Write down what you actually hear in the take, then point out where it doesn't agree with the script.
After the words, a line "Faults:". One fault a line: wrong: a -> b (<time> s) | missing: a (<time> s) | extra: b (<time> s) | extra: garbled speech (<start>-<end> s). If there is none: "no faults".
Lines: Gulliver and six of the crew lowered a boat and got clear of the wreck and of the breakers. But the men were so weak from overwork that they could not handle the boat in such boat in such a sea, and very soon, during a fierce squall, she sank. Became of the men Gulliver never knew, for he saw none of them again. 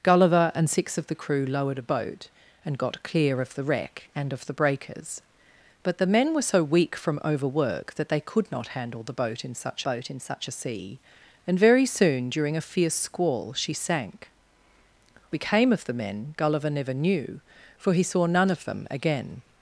Gulliver and six of the crew lowered a boat and got clear of the wreck and of the breakers. But the men were so weak from overwork that they could not handle the boat in such boat in such a sea, and very soon, during a fierce squall, she sank. Became of the men Gulliver never knew, for he saw none of them again.
Faults:
no faults